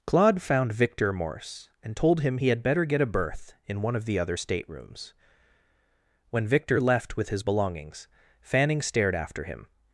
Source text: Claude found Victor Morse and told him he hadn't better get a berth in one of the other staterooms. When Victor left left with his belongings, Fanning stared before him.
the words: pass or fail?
fail